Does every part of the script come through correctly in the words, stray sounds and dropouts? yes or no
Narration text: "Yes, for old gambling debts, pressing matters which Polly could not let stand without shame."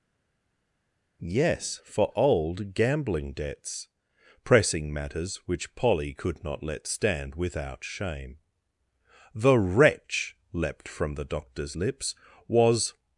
no